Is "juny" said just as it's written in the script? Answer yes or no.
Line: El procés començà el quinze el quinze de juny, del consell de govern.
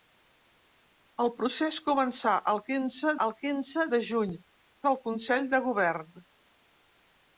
yes